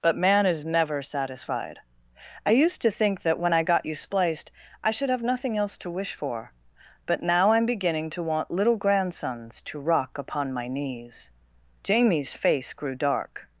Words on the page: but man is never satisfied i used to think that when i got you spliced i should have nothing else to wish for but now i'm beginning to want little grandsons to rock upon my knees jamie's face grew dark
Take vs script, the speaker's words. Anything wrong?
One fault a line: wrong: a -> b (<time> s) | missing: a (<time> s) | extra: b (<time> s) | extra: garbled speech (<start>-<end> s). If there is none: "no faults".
no faults